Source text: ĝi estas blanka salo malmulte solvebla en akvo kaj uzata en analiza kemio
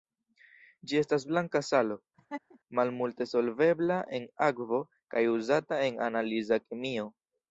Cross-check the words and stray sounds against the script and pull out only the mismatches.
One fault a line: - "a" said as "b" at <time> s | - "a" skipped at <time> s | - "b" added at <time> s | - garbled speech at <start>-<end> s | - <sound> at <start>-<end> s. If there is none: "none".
- laugh at 2.2-2.6 s